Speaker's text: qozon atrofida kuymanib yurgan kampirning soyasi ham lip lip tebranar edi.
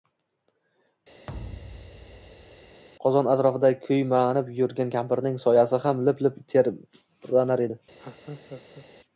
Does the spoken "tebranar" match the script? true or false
true